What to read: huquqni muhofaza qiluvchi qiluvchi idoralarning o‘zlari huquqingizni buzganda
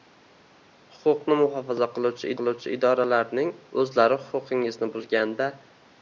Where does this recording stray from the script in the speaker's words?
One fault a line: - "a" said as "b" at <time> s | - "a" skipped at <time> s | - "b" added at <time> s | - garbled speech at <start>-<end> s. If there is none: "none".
none